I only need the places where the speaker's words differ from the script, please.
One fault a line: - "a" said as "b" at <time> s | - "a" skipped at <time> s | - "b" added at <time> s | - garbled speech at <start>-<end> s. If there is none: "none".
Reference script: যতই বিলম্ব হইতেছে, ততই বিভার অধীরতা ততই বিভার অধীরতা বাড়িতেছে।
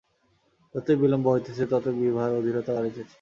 - "ততই বিভার অধীরতা" skipped at 2.7 s